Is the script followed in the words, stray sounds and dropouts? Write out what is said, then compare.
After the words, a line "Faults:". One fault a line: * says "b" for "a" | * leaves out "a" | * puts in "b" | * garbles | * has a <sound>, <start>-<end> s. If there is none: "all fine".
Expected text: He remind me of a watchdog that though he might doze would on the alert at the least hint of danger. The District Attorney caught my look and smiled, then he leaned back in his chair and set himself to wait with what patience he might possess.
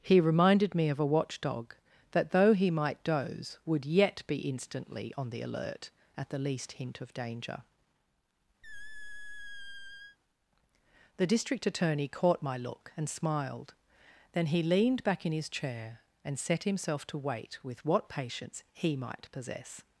He reminded me of a watchdog that though he might doze would yet be instantly on the alert at the least hint of danger. The District Attorney caught my look and smiled, then he leaned back in his chair and set himself to wait with what patience he might possess.
Faults:
* says "reminded" for "remind"
* puts in "yet be instantly"
* has a squeak, 8.6-10.2 s